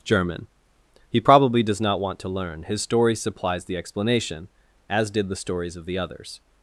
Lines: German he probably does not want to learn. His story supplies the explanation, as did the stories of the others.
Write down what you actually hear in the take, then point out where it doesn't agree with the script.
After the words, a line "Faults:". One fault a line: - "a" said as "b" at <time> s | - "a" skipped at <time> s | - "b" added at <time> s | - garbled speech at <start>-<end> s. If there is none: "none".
German he probably does not want to learn. His story supplies the explanation, as did the stories of the others.
Faults:
none